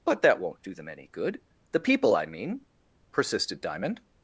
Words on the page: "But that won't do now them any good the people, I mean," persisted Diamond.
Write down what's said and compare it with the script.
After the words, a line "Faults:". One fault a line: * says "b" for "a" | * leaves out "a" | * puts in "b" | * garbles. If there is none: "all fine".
"But that won't do them any good the people, I mean," persisted Diamond.
Faults:
* leaves out "now"